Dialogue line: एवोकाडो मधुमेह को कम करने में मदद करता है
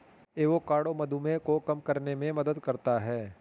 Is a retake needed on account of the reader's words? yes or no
no